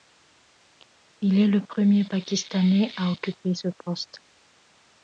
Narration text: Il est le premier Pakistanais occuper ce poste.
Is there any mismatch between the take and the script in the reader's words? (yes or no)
yes